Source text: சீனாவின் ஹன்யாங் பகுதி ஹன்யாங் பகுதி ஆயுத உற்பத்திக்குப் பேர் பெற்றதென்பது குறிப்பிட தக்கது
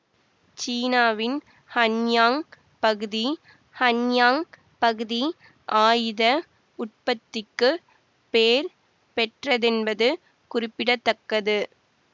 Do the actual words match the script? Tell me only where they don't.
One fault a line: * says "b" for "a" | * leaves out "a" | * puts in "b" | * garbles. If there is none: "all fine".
all fine